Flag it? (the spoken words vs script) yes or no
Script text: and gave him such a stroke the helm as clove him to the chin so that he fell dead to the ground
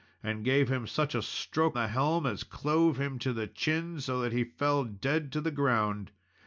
no